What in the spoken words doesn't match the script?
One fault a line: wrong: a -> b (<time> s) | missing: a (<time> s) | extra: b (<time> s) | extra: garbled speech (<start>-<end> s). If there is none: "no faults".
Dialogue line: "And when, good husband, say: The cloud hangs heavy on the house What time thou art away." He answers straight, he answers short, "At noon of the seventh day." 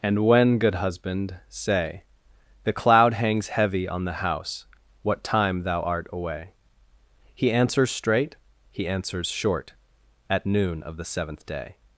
no faults